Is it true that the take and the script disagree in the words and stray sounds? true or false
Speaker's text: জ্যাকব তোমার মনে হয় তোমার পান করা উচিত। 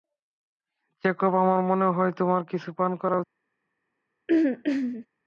true